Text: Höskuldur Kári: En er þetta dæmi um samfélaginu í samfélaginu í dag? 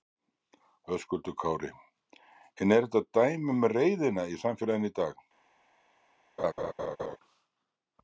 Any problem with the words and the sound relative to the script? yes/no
yes